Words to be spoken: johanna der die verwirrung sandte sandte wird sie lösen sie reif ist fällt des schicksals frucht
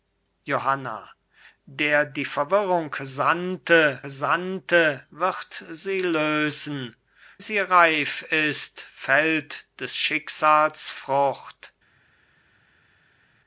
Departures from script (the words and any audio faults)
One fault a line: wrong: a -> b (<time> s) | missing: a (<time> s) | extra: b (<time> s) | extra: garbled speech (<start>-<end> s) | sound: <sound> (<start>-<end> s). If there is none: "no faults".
no faults